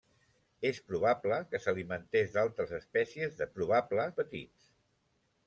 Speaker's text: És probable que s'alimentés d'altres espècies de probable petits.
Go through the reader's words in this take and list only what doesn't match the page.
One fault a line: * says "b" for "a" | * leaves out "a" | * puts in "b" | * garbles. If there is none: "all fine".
all fine